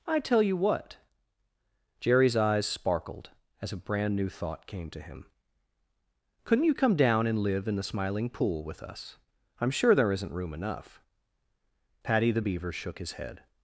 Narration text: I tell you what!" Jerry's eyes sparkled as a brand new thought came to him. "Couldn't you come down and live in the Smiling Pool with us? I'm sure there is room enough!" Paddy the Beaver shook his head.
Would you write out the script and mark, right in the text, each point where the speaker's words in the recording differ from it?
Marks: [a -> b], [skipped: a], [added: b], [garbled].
I tell you what!" Jerry's eyes sparkled as a brand new thought came to him. "Couldn't you come down and live in the Smiling Pool with us? I'm sure there [is -> isn't] room enough!" Paddy the Beaver shook his head.